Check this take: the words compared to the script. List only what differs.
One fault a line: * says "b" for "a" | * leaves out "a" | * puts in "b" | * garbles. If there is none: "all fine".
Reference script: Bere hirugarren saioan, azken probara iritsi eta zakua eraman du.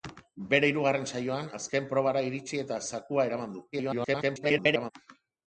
* garbles